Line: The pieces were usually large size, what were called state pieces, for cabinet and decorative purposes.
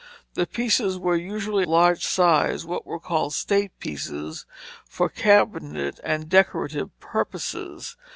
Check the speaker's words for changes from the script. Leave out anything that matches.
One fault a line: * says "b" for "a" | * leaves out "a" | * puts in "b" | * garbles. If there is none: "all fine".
all fine